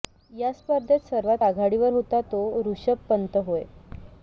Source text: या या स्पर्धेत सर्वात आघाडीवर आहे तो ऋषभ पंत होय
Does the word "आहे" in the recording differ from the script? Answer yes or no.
yes